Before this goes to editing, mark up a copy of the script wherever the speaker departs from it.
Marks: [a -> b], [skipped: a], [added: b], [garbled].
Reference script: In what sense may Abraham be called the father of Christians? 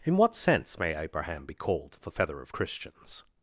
In what sense may Abraham be called the [father -> feather] of Christians?